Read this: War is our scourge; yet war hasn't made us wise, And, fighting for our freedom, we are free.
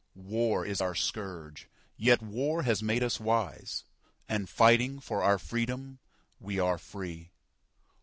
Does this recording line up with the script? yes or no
no